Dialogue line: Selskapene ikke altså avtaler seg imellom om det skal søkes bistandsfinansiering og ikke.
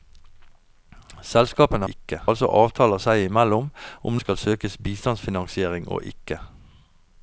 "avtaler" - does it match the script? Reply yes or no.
yes